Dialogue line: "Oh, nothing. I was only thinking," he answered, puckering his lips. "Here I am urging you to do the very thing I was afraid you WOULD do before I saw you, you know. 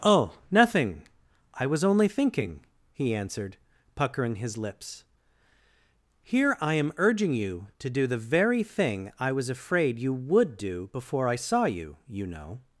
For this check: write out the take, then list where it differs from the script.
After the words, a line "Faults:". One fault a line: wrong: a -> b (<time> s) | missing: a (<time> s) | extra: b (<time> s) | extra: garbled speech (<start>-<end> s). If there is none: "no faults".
"Oh, nothing. I was only thinking," he answered, puckering his lips. "Here I am urging you to do the very thing I was afraid you WOULD do before I saw you, you know.
Faults:
no faults